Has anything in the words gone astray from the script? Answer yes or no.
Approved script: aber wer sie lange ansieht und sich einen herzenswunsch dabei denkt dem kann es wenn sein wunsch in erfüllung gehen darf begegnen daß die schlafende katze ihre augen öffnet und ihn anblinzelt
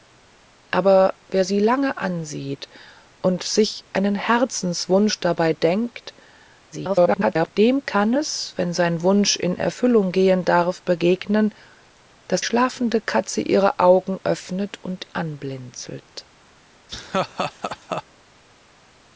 yes